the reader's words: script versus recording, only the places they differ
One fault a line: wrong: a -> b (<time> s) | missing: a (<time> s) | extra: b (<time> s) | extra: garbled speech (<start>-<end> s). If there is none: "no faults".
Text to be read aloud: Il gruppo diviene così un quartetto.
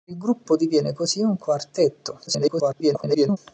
extra: garbled speech (2.3-3.4 s)